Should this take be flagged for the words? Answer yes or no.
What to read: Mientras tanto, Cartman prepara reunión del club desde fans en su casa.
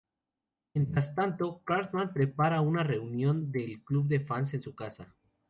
yes